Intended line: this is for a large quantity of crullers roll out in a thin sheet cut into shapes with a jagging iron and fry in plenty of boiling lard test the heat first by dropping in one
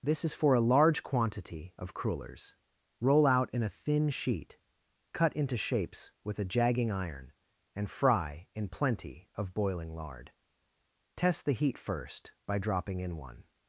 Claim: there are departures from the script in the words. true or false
false